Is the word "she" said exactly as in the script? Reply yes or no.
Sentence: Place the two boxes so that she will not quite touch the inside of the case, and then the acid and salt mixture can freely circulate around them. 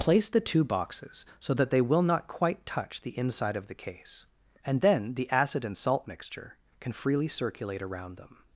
no